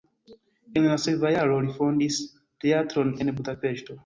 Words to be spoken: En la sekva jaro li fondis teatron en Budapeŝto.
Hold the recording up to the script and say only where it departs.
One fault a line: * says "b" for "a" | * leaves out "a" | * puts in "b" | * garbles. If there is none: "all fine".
all fine